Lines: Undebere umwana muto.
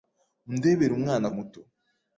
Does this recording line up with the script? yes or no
yes